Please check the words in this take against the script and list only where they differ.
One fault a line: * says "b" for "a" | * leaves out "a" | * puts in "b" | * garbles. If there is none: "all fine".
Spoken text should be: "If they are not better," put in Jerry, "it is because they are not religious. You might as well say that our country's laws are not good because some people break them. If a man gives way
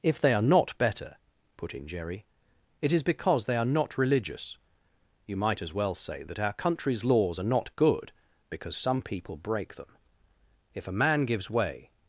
all fine